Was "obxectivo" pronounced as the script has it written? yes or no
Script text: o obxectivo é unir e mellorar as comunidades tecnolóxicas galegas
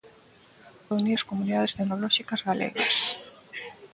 no